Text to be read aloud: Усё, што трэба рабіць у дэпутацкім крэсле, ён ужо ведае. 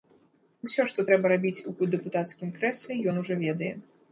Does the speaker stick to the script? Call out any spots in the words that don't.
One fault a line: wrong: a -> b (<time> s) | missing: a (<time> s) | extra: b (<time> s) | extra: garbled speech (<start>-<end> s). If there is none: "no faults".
no faults